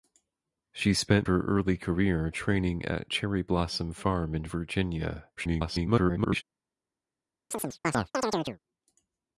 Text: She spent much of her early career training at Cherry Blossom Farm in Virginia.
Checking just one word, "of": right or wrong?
wrong